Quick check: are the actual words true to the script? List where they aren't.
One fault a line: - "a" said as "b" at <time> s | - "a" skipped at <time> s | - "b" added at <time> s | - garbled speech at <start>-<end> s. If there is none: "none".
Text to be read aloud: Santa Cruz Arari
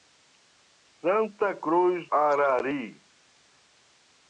none